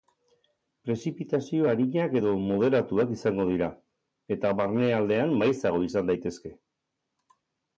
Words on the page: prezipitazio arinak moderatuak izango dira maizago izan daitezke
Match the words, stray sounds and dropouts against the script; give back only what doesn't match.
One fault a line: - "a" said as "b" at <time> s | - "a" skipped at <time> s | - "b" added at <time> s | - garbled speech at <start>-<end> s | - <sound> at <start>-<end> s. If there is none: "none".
- "edo" added at 2.2 s
- "eta barnealdean" added at 4.4 s